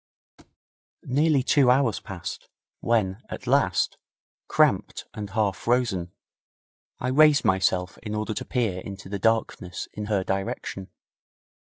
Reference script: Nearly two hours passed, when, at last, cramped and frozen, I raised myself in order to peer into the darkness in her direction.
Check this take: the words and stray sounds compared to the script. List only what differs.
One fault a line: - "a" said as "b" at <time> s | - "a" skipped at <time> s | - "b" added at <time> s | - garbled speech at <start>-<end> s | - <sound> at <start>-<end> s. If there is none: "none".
- thud at 0.4-0.6 s
- "half" added at 5.3 s